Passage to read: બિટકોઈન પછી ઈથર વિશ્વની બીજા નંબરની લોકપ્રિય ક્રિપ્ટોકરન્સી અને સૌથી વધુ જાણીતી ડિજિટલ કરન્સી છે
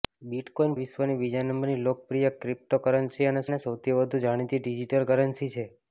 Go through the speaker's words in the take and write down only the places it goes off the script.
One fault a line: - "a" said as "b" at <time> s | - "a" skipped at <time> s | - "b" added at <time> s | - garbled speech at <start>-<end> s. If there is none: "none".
- "પછી ઈથર" skipped at 0.7 s
- "અને" added at 3.5 s